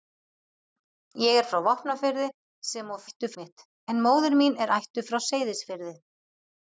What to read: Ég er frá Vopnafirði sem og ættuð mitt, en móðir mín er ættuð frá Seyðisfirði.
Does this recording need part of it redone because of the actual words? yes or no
no